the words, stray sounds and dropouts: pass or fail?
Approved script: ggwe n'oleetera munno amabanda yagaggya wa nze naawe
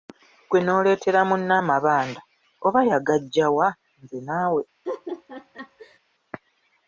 fail